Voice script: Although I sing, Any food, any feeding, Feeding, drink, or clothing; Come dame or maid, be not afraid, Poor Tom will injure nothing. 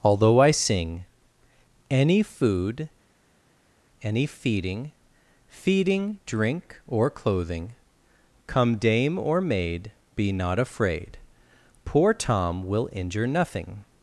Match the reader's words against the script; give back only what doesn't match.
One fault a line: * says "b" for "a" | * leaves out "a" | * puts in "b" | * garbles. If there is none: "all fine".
all fine